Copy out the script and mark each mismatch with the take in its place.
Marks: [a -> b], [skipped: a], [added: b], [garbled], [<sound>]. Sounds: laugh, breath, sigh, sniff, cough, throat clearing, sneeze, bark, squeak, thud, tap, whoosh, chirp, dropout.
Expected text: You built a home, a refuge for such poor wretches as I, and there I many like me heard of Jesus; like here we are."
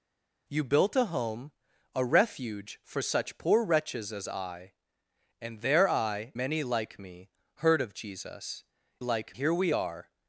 You built a home, a refuge for such poor wretches as I, and there I many like me heard of Jesus; like here we are."